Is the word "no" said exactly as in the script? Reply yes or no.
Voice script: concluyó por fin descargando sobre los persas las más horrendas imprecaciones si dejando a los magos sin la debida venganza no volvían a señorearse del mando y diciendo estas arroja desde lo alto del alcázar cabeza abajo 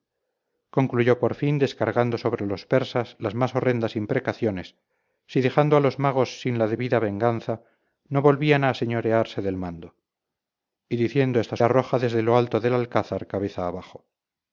yes